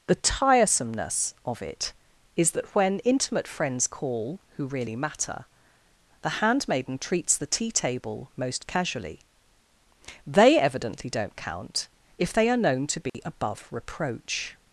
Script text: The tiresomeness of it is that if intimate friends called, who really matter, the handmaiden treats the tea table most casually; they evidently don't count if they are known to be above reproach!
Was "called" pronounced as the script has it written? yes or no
no